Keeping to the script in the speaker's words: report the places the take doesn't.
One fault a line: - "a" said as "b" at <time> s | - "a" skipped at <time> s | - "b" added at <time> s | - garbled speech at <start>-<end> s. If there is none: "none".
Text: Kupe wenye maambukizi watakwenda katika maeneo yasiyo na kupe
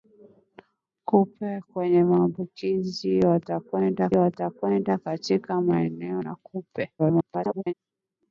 - "watakwenda" added at 4.1 s
- "yasiyo" skipped at 6.2 s
- garbled speech at 7.0-7.7 s